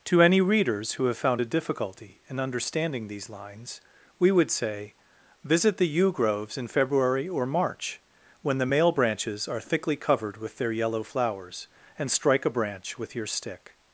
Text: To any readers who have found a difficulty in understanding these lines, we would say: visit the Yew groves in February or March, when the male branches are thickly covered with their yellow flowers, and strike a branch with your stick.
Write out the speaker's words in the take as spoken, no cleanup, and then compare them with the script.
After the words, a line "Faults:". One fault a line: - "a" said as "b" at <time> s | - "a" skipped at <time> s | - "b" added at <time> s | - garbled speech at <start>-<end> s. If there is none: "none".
To any readers who have found a difficulty in understanding these lines, we would say: visit the Yew groves in February or March, when the male branches are thickly covered with their yellow flowers, and strike a branch with your stick.
Faults:
none